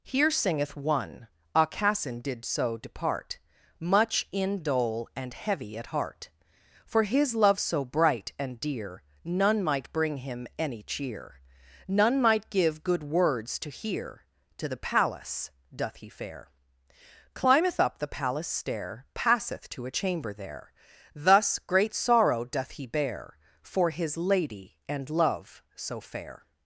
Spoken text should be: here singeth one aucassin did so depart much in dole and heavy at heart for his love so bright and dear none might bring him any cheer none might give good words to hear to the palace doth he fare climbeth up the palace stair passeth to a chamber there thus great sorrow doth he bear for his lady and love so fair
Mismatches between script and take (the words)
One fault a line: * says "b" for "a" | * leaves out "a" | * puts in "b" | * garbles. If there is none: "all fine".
all fine